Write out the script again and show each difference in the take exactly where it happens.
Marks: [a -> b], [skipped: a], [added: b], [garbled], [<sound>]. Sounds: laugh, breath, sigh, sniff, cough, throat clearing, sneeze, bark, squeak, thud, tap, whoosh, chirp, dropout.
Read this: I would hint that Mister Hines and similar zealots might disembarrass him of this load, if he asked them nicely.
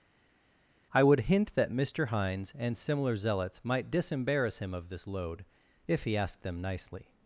I would hint that Mister Hines and similar zealots might disembarrass him of this load, if he asked them nicely.